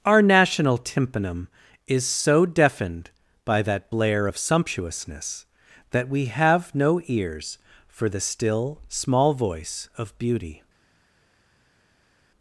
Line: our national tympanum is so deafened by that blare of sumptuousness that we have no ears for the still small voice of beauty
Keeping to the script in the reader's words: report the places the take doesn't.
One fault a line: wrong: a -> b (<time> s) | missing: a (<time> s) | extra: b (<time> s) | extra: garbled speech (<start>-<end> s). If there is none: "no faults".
no faults